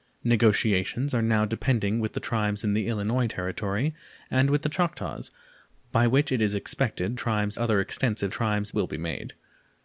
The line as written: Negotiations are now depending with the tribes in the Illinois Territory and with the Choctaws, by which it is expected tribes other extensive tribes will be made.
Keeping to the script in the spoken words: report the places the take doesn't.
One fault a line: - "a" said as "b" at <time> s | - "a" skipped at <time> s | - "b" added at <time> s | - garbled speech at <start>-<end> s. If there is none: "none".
none